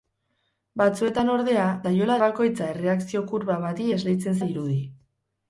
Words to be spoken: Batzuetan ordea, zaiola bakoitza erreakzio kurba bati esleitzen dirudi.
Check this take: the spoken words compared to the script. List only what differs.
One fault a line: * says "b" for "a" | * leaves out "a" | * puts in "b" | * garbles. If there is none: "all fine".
all fine